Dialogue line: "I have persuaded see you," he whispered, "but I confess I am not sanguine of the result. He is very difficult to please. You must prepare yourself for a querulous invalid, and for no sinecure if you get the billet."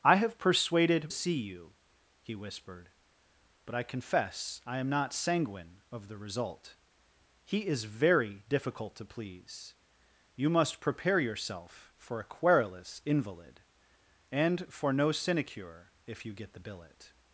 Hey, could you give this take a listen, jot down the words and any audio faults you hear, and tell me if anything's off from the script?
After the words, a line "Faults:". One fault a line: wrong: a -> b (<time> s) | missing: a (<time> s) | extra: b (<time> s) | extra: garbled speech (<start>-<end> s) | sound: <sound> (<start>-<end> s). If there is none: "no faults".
"I have persuaded see you," he whispered, "but I confess I am not sanguine of the result. He is very difficult to please. You must prepare yourself for a querulous invalid, and for no sinecure if you get the billet."
Faults:
no faults